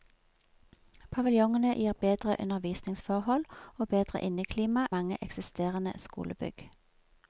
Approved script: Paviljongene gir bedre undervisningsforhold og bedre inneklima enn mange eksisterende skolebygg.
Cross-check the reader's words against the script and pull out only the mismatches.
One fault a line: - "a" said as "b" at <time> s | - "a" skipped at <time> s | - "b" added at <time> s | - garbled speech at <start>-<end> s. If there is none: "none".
- "enn" skipped at 4.9 s